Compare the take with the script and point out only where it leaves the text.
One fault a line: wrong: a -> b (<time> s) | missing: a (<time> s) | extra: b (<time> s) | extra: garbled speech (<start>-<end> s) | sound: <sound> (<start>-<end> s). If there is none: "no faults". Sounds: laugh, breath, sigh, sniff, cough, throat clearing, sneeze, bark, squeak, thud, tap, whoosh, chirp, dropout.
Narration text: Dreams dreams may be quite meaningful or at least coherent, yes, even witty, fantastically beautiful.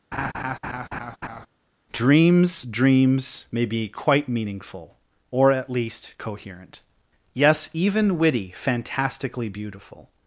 sound: laugh (0.1-1.5 s)